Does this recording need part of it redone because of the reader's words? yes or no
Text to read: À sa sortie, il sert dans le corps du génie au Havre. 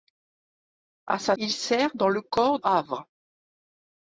yes